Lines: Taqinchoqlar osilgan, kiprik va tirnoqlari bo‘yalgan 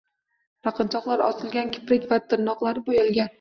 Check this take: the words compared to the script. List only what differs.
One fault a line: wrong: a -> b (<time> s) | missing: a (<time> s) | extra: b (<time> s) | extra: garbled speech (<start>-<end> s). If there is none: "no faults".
no faults